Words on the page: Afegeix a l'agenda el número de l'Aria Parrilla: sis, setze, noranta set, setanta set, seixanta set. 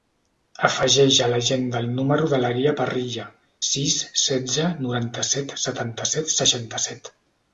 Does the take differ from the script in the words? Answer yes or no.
no